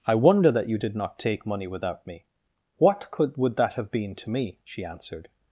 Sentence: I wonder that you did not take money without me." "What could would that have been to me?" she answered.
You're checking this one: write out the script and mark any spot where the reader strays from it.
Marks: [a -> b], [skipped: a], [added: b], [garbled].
I wonder that you did not take money without me." "What could would that have been to me?" she answered.